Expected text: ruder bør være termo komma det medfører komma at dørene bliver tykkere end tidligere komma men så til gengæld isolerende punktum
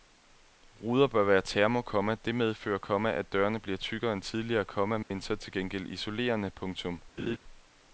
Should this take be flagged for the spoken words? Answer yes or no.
no